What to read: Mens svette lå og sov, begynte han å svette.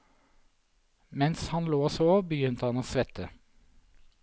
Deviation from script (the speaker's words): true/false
true